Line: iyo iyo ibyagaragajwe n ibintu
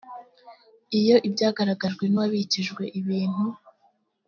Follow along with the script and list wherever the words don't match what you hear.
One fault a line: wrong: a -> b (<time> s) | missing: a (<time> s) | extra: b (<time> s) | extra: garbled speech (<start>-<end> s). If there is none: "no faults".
missing: iyo (1.2 s)
extra: uwabikijwe (2.1 s)